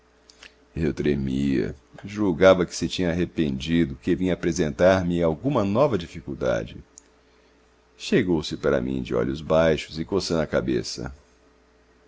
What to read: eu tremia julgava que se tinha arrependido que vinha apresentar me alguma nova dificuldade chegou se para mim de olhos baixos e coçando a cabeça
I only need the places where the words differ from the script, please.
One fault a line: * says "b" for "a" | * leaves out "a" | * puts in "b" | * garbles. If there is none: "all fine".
all fine